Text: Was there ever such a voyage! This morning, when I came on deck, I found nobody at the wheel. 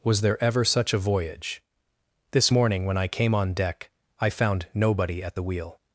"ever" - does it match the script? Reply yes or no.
yes